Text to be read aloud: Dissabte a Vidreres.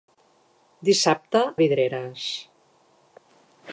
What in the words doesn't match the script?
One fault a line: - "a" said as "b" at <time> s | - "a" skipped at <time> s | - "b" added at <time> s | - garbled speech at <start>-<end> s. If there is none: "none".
none